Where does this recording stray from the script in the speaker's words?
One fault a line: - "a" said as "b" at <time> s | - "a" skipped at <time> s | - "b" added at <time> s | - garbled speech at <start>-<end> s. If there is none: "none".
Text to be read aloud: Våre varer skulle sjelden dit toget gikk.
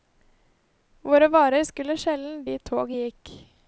none